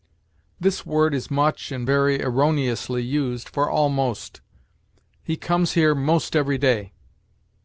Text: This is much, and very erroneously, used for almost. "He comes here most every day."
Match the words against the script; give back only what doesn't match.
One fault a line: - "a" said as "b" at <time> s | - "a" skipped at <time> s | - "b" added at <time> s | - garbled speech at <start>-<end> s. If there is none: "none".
- "word" added at 0.8 s